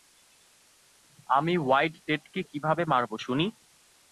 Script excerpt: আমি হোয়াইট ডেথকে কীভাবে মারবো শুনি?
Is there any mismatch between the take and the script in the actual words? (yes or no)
no